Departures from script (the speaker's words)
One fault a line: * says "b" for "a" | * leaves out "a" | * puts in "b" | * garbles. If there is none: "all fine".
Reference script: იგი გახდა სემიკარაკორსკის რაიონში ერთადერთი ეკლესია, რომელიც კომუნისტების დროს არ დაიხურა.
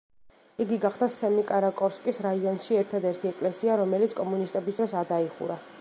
all fine